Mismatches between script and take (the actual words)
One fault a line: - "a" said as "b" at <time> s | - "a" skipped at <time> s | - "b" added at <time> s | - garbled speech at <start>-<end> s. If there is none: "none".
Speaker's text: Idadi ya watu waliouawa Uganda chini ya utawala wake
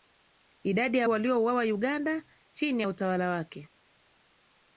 - "watu" skipped at 1.1 s